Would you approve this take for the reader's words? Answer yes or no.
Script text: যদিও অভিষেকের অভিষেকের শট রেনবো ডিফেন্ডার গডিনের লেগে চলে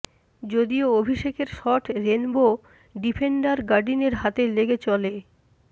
no